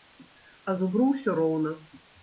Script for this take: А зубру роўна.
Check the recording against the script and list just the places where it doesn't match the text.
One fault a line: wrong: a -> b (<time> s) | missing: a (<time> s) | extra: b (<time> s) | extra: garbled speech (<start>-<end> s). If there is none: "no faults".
extra: ўсё (1.1 s)